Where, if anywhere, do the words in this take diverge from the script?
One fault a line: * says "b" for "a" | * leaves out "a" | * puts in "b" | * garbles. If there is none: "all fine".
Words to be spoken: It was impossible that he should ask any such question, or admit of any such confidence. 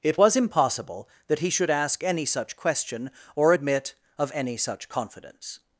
all fine